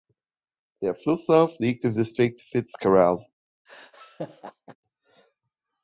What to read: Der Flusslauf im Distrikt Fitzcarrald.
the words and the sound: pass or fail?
fail